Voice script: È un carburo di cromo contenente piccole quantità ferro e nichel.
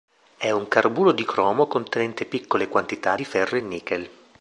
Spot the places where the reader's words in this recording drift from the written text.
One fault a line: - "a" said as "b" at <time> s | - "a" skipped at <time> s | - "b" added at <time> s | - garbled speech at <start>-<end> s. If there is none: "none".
- "di" added at 3.1 s